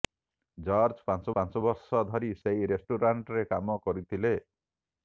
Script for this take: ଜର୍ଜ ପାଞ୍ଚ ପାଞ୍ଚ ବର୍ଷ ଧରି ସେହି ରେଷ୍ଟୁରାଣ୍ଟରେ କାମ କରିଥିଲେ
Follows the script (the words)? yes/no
yes